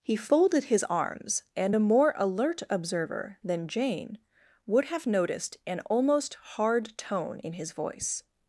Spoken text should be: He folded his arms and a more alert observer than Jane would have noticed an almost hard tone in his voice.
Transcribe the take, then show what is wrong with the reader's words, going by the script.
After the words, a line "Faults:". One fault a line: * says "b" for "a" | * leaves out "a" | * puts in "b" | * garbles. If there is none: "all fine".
He folded his arms and a more alert observer than Jane would have noticed an almost hard tone in his voice.
Faults:
all fine